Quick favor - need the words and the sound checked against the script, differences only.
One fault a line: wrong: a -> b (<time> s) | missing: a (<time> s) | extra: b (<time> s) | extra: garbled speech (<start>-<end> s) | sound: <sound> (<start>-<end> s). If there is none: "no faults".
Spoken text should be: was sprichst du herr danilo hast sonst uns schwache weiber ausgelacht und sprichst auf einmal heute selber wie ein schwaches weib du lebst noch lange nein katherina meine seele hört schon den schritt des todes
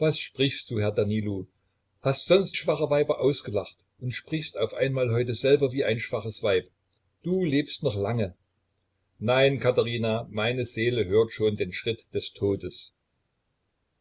missing: uns (2.6 s)